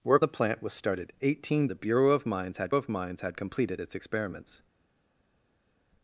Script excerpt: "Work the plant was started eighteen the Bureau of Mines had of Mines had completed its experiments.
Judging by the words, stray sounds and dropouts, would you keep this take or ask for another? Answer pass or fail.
pass